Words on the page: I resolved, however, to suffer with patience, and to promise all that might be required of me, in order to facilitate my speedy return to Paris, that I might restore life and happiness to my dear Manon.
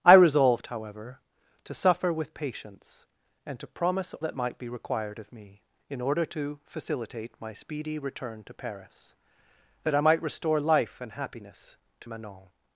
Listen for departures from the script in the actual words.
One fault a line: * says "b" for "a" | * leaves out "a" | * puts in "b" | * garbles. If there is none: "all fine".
* leaves out "all"
* leaves out "my dear"